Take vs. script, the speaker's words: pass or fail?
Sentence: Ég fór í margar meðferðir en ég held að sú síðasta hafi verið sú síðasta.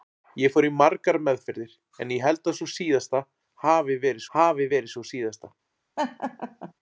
fail